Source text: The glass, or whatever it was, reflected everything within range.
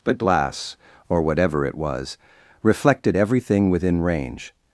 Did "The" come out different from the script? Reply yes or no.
yes